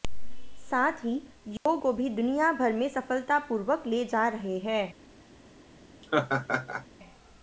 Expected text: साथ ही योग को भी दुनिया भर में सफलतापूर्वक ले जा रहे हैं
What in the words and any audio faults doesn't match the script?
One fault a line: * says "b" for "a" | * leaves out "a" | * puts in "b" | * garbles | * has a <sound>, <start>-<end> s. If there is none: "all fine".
* has a dropout, 1.6-1.7 s
* has a laugh, 6.0-6.9 s